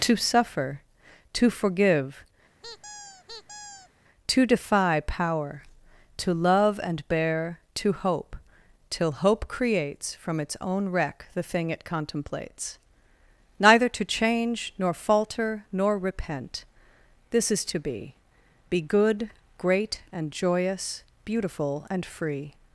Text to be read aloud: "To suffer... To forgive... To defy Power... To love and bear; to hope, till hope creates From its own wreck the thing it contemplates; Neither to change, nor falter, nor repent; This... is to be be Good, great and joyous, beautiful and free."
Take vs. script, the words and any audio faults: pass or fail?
fail